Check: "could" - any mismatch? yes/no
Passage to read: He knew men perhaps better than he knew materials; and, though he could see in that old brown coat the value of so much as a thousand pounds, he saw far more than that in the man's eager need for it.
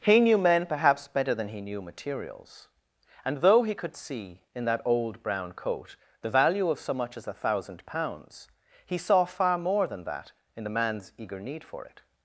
no